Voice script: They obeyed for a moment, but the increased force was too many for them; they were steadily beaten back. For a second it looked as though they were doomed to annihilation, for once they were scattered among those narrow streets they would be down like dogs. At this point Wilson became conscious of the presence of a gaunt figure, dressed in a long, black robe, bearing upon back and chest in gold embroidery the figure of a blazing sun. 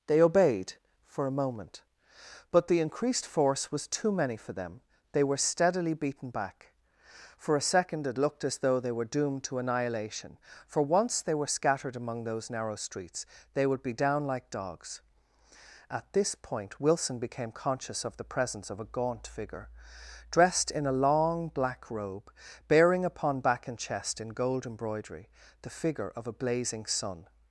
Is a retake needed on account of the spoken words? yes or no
no